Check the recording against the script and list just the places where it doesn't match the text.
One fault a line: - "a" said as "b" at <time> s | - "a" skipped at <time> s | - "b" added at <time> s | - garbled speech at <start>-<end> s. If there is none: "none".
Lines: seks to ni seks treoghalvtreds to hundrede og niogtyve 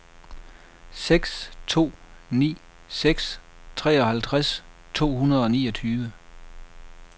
none